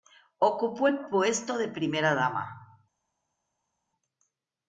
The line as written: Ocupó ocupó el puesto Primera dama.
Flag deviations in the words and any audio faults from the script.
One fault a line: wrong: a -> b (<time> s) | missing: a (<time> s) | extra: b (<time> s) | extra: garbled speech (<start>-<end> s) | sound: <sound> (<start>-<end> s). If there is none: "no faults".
missing: ocupó (0.9 s)
extra: de (1.6 s)